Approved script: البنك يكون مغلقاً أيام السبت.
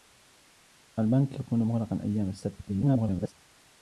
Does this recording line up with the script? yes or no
no